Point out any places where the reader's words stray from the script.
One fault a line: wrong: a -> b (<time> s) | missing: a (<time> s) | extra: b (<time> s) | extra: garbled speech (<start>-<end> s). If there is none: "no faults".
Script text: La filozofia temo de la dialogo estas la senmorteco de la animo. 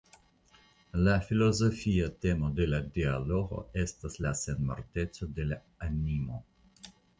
no faults